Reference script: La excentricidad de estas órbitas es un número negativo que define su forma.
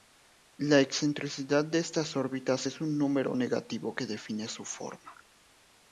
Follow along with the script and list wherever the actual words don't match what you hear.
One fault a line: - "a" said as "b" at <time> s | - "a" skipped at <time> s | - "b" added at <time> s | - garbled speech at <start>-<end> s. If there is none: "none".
none